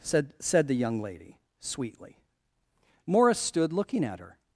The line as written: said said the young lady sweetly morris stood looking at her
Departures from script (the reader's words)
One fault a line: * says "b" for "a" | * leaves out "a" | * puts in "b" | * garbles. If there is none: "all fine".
all fine